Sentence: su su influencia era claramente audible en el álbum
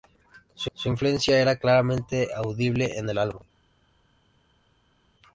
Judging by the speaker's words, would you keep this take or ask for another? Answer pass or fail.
pass